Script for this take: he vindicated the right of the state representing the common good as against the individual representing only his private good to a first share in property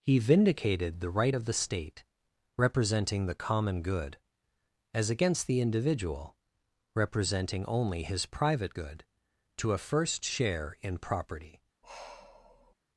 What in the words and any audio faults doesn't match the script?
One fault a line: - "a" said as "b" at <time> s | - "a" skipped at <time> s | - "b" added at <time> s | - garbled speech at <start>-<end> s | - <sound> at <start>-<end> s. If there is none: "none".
- sigh at 11.8-12.7 s